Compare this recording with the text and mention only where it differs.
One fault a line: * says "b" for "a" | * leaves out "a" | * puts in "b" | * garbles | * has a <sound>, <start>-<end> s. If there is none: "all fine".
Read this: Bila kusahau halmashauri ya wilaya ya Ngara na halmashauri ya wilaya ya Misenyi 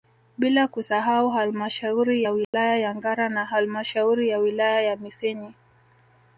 * has a dropout, 2.4-2.5 s